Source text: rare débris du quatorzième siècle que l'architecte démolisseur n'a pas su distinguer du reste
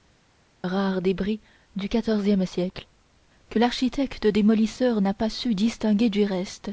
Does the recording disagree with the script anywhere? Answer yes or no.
no